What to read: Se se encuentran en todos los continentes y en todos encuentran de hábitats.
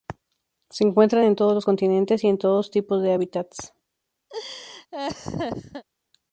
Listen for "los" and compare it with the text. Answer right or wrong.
right